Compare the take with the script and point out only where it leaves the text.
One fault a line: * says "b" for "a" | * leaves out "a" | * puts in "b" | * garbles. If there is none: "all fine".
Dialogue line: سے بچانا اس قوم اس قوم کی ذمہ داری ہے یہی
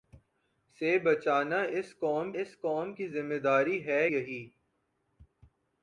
all fine